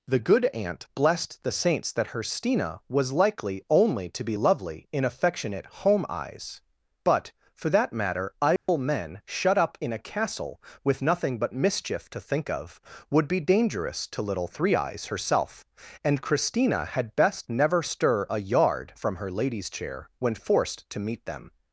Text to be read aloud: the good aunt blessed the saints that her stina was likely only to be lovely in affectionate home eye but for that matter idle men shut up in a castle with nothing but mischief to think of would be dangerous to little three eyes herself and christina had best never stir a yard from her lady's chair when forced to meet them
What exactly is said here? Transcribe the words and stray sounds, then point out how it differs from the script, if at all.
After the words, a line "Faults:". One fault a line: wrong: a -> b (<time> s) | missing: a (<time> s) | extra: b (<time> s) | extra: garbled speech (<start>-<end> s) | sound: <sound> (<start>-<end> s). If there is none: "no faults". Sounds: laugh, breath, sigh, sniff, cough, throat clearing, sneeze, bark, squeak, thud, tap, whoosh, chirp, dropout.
the good aunt blessed the saints that her stina was likely only to be lovely in affectionate home eyes but for that matter idle men shut up in a castle with nothing but mischief to think of would be dangerous to little three eyes herself and christina had best never stir a yard from her lady's chair when forced to meet them
Faults:
wrong: eye -> eyes (6.1 s)
sound: dropout (8.6-8.7 s)